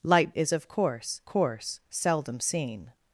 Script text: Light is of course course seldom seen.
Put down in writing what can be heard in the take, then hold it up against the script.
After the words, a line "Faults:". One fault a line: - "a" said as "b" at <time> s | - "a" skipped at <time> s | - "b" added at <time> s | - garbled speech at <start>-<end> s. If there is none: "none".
Light is of course course seldom seen.
Faults:
none